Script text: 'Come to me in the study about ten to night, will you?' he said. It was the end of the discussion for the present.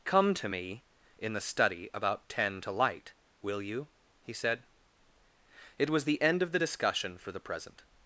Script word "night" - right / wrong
wrong